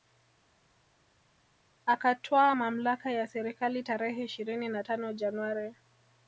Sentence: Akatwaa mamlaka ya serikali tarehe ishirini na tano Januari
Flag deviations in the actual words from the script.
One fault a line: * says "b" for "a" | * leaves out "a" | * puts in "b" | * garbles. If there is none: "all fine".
all fine